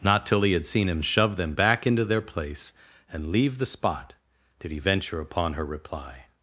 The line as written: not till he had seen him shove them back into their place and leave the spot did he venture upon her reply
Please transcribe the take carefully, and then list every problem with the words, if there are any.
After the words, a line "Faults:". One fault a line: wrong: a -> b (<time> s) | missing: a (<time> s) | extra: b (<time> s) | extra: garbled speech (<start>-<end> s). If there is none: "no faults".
not till he had seen him shove them back into their place and leave the spot did he venture upon her reply
Faults:
no faults